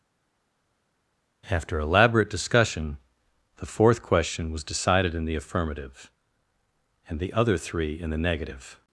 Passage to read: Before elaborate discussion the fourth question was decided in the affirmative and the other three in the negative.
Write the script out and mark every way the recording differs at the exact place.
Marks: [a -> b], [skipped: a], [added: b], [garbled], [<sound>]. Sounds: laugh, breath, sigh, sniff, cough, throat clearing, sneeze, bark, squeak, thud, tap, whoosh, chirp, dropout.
[Before -> After] elaborate discussion the fourth question was decided in the affirmative and the other three in the negative.